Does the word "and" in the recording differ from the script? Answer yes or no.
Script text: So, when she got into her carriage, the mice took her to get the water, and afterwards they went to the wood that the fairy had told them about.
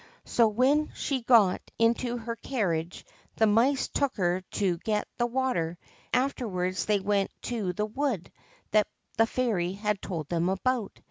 yes